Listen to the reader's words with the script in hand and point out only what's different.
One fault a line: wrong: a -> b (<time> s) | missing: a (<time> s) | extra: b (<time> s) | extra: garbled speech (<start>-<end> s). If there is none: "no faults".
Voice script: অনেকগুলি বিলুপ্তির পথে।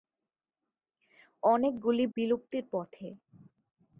no faults